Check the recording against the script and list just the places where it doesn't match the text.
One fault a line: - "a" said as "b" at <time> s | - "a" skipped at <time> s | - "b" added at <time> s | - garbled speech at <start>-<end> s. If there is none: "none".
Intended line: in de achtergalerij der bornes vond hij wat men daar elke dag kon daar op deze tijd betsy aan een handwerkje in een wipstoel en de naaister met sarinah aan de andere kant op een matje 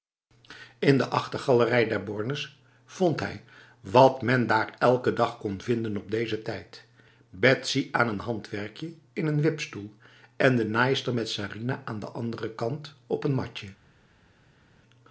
- "daar" said as "vinden" at 5.6 s